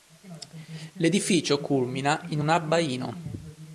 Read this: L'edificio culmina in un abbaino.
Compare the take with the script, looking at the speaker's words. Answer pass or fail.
pass